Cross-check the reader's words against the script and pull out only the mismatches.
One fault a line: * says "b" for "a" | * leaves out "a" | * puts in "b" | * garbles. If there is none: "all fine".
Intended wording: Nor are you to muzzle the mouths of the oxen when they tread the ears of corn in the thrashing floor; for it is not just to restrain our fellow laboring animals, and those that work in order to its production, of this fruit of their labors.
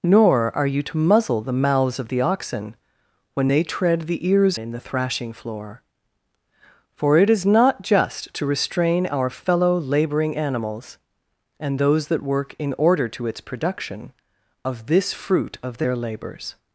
* leaves out "of corn"